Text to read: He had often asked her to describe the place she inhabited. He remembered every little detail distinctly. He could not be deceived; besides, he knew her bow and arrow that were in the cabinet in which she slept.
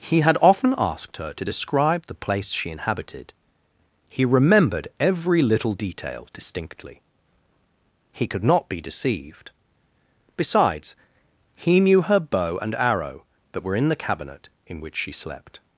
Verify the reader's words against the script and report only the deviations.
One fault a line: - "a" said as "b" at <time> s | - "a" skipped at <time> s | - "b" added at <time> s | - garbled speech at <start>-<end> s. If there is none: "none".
none